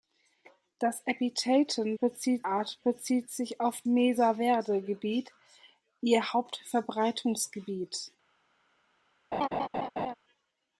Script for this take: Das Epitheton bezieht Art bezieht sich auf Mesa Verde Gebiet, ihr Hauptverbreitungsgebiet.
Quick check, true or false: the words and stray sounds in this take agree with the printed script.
false